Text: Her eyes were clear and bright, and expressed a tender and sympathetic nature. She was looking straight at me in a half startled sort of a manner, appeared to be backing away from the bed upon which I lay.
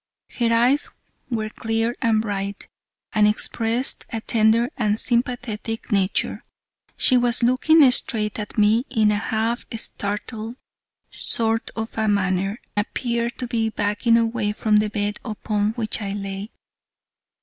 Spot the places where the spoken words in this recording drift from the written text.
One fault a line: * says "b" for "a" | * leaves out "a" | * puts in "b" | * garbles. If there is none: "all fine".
all fine